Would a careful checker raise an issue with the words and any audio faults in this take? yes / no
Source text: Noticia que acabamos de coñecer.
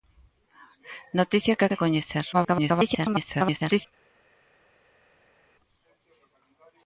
yes